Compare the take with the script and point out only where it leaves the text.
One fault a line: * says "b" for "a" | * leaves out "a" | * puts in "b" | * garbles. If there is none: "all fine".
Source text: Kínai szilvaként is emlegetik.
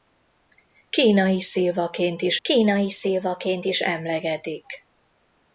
* puts in "kínai szilvaként is"